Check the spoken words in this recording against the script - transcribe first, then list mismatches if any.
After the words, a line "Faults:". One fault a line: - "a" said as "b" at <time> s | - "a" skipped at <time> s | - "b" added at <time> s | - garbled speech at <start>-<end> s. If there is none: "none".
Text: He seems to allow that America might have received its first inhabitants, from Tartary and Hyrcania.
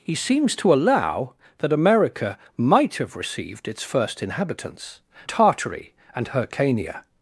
He seems to allow that America might have received its first inhabitants, Tartary and Hyrcania.
Faults:
- "from" skipped at 5.0 s